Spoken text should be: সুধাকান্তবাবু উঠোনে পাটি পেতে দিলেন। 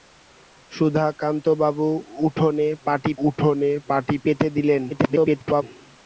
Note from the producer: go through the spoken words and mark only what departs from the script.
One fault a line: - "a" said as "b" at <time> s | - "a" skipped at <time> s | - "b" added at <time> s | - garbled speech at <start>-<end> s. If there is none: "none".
- "উঠোনে পাটি" added at 3.3 s
- garbled speech at 4.9-5.6 s